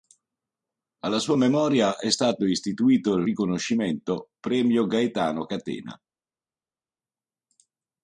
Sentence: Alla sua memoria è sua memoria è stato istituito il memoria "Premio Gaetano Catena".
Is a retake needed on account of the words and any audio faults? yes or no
yes